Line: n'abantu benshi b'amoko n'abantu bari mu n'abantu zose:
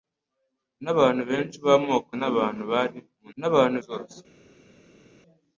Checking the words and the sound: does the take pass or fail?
pass